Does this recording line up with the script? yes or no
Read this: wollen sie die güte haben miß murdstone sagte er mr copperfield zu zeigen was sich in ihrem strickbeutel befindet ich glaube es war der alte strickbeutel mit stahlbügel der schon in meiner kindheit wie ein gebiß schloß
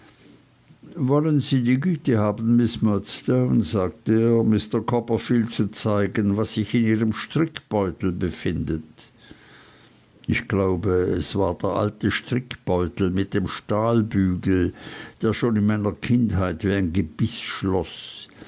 no